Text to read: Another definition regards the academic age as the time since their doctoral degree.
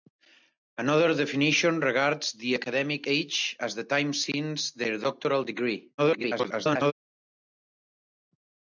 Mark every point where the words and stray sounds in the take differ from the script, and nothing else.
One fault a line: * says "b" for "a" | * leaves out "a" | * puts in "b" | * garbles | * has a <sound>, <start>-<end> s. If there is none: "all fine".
* garbles